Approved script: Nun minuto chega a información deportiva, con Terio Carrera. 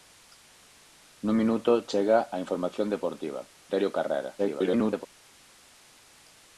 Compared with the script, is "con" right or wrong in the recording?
wrong